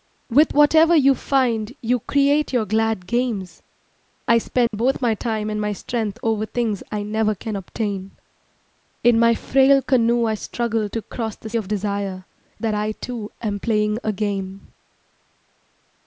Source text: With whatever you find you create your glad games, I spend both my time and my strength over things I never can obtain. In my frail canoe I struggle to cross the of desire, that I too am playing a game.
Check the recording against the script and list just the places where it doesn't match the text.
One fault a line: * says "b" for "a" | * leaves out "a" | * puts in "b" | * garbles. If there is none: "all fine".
all fine